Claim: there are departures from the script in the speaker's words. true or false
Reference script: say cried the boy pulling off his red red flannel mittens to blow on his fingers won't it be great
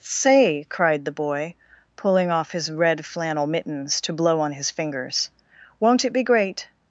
true